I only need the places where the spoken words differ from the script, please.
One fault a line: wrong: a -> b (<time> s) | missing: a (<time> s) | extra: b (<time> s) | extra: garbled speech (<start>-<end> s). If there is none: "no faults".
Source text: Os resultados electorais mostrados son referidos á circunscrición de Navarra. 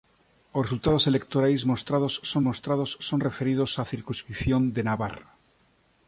extra: mostrados son (2.5 s)